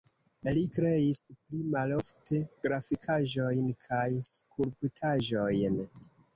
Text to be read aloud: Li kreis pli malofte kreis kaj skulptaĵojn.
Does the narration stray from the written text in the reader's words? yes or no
yes